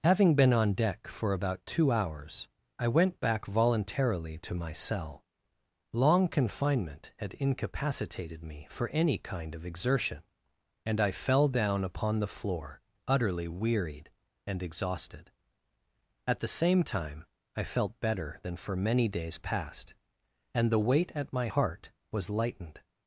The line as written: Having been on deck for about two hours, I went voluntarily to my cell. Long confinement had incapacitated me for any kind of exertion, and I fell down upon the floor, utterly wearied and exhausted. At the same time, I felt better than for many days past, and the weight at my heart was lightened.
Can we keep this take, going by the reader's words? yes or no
no